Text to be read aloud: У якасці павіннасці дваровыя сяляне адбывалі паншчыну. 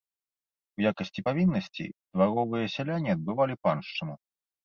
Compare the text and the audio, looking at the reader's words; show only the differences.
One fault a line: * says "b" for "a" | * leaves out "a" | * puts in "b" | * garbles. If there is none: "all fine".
all fine